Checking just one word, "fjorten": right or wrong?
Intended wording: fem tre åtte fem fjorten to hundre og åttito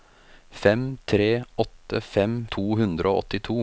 wrong